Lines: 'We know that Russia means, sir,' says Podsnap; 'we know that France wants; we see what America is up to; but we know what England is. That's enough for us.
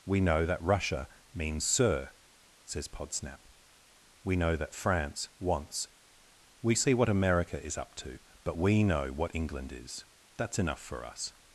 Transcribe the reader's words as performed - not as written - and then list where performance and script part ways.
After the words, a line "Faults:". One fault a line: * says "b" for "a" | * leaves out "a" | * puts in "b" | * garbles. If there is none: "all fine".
'We know that Russia means, sir,' says Podsnap; 'we know that France wants; we see what America is up to; but we know what England is. That's enough for us.
Faults:
all fine